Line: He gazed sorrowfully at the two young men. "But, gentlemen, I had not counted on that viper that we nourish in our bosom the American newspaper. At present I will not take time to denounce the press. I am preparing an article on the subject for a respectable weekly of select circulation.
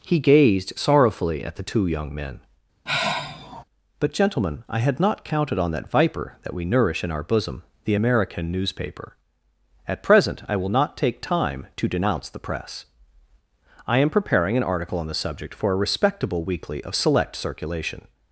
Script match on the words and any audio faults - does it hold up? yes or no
no